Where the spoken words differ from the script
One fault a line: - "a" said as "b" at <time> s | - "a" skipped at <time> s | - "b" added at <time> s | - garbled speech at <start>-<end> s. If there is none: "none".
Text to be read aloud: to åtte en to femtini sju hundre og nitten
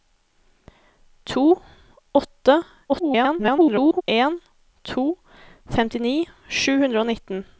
- garbled speech at 2.9-4.0 s